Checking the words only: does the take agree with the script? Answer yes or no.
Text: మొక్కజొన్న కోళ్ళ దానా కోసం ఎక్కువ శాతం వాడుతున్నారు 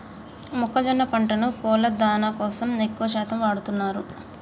no